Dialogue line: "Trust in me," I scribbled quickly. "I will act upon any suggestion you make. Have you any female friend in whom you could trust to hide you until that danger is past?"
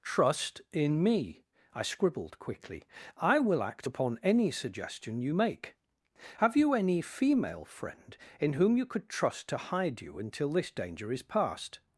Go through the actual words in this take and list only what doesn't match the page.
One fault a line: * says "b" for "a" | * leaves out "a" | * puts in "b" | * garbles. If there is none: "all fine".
* says "this" for "that"